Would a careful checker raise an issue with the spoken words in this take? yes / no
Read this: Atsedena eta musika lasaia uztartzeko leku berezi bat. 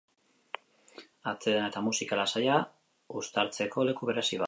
no